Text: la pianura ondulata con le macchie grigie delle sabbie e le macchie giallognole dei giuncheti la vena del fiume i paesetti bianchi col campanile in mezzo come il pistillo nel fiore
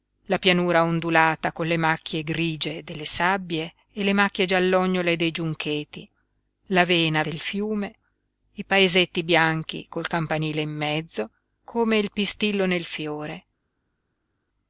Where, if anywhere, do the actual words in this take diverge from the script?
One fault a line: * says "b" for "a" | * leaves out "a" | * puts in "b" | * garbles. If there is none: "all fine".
all fine